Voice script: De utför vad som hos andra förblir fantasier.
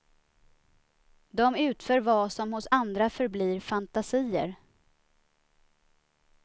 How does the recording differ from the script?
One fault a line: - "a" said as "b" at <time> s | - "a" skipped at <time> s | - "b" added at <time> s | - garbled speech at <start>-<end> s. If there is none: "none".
none